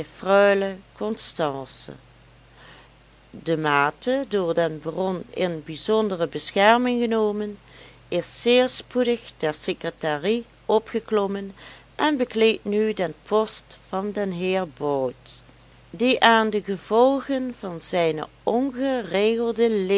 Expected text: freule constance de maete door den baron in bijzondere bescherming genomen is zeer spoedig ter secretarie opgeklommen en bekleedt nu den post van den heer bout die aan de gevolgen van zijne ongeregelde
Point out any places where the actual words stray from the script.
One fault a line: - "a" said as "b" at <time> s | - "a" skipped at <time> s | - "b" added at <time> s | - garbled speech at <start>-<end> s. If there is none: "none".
none